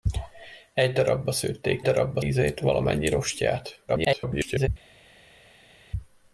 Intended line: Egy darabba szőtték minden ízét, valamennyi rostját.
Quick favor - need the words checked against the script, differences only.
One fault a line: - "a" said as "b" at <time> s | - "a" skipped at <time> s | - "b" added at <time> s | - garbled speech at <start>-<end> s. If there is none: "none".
- "minden" said as "darabba" at 1.8 s
- garbled speech at 3.9-4.7 s